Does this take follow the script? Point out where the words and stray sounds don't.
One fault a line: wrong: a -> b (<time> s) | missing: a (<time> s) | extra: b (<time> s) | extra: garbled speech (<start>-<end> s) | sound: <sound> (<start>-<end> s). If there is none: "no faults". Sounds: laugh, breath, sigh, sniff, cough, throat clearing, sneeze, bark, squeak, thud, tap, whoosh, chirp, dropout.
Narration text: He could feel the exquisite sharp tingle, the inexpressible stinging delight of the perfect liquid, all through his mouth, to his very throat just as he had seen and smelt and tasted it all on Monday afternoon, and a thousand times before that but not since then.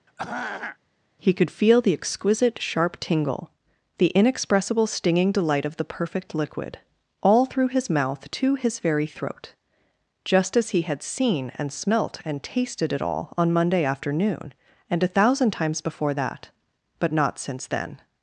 sound: throat clearing (0.1-0.8 s)